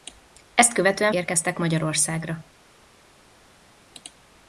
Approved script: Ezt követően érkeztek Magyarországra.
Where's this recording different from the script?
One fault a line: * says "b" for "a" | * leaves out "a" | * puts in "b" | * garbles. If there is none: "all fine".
all fine